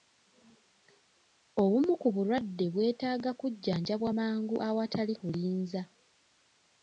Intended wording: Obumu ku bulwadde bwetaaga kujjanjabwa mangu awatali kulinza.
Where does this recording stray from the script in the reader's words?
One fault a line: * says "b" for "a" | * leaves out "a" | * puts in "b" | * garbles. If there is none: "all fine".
all fine